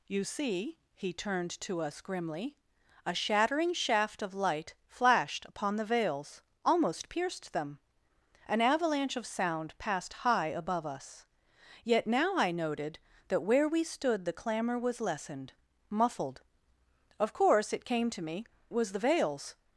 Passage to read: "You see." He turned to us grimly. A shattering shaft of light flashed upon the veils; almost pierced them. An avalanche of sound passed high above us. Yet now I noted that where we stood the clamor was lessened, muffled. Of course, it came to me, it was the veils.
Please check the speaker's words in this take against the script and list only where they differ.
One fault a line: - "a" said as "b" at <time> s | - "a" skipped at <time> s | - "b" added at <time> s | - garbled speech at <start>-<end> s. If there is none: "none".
- "it" skipped at 18.5 s